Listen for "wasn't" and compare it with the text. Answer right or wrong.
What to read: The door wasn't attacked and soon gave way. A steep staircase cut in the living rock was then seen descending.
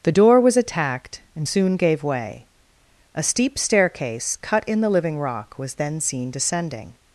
wrong